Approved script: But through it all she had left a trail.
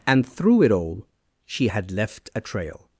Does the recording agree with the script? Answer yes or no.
no